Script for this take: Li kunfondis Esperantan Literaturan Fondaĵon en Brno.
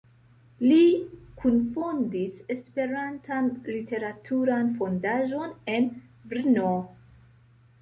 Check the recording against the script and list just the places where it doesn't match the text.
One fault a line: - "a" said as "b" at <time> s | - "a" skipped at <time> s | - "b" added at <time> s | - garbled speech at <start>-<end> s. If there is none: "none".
none